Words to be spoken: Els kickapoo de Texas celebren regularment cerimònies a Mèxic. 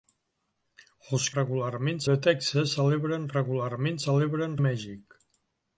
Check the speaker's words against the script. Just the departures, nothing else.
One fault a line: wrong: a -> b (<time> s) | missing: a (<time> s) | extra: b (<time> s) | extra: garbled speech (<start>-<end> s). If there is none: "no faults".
wrong: kickapoo -> regularment (1.4 s)
wrong: cerimònies -> celebren (4.1 s)